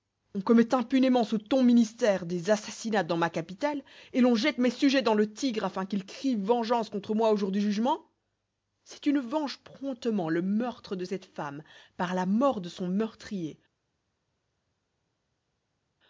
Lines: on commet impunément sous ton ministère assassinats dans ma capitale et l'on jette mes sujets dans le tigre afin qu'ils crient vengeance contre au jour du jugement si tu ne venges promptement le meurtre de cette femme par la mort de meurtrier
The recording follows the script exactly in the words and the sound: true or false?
false